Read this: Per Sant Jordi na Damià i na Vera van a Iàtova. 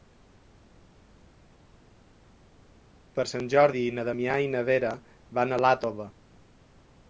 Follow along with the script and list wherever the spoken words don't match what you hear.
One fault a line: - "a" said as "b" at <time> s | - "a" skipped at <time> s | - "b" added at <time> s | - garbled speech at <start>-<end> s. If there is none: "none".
none